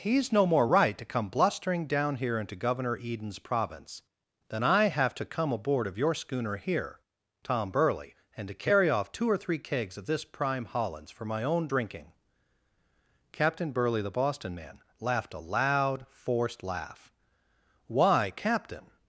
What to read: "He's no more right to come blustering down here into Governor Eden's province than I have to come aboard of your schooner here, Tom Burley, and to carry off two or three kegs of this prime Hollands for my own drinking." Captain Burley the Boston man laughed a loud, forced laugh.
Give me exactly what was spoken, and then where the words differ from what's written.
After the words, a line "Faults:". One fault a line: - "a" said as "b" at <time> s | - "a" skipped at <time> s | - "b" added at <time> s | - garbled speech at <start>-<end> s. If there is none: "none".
"He's no more right to come blustering down here into Governor Eden's province than I have to come aboard of your schooner here, Tom Burley, and to carry off two or three kegs of this prime Hollands for my own drinking." Captain Burley the Boston man laughed a loud, forced laugh. "Why, Captain
Faults:
- "Why Captain" added at 17.9 s